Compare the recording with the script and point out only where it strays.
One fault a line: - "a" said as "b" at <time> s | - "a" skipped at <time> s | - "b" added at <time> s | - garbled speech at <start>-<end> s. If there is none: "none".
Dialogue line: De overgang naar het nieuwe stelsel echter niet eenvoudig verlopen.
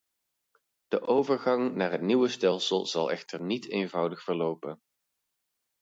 - "zal" added at 2.9 s